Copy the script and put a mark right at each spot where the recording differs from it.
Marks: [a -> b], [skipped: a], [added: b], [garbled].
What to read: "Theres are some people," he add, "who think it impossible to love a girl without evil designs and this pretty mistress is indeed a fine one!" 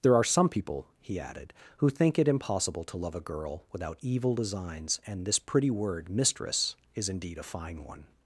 ["Theres -> There] are some people," he [add, -> added] "who think it impossible to love a girl without evil designs and this pretty [added: word] mistress is indeed a fine one!"